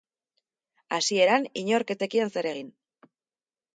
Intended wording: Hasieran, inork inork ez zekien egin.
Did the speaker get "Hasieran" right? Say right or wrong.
right